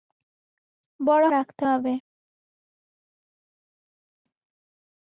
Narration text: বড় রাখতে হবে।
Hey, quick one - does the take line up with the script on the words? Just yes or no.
yes